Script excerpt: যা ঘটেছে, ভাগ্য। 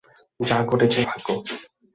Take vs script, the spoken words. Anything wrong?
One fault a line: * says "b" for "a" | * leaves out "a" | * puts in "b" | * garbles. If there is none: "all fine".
all fine